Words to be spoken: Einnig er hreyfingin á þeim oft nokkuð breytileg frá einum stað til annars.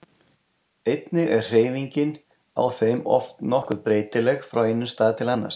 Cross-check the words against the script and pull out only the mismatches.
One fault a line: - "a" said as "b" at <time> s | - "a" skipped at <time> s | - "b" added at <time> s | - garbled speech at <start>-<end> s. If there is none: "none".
none